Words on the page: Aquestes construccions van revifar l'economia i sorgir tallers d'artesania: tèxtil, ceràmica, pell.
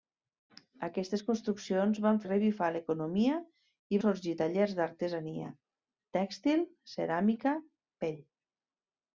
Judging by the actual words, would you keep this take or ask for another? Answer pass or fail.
pass